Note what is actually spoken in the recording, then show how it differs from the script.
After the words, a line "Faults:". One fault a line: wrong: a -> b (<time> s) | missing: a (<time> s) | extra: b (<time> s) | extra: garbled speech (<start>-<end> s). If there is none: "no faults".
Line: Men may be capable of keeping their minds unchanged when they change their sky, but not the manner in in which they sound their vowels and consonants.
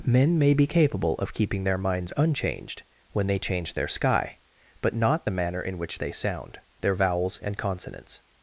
Men may be capable of keeping their minds unchanged when they change their sky, but not the manner in which they sound their vowels and consonants.
Faults:
missing: in (5.8 s)